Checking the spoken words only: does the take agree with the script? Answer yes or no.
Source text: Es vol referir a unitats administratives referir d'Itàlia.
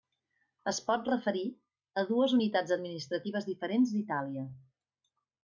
no